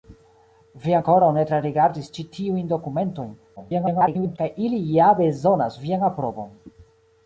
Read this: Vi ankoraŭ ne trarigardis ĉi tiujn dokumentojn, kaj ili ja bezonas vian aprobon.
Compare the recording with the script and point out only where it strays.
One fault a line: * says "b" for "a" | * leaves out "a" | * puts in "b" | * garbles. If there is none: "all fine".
* garbles